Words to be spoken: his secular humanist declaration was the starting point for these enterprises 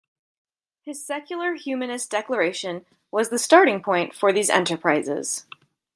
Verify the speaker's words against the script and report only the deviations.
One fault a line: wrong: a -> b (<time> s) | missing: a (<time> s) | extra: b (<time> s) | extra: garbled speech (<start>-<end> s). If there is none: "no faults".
no faults